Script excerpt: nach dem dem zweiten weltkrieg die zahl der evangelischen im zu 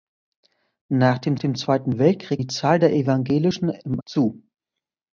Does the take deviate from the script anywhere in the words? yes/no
no